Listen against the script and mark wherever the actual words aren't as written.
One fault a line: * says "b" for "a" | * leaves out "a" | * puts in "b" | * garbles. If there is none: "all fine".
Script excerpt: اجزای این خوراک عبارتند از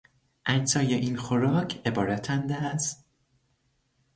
all fine